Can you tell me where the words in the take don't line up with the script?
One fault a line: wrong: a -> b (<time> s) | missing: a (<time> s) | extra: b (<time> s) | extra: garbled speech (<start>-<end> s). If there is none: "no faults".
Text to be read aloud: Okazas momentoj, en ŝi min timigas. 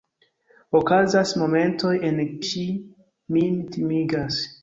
no faults